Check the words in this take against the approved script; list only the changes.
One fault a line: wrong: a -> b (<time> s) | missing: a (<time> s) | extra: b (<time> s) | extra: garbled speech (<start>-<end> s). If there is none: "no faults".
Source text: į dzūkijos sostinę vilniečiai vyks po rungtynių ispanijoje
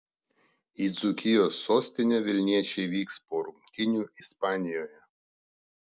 no faults